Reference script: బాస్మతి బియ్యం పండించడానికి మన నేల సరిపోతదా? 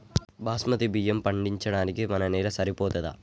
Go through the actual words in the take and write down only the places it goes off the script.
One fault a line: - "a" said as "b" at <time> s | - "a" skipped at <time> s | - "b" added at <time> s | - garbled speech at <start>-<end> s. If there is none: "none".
none